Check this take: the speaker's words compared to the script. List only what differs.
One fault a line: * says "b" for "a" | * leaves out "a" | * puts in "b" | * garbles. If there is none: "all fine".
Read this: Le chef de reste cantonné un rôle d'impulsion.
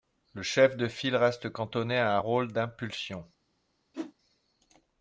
* puts in "file"
* puts in "à"